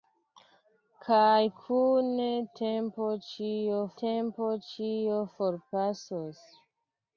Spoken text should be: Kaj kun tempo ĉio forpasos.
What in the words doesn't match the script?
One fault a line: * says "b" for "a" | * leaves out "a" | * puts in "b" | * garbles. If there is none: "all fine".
* puts in "tempo ĉio"